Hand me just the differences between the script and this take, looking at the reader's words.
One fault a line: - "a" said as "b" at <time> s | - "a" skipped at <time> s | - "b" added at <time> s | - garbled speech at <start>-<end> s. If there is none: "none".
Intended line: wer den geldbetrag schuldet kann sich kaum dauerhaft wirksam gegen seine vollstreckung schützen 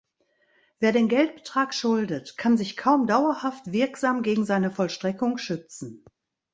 none